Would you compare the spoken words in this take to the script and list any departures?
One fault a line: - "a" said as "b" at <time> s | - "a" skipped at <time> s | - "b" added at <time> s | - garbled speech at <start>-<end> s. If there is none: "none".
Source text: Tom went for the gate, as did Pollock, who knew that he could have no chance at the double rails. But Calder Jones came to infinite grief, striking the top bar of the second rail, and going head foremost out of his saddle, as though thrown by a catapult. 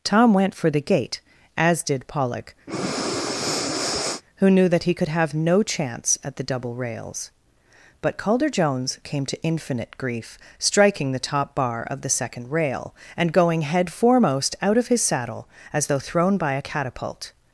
none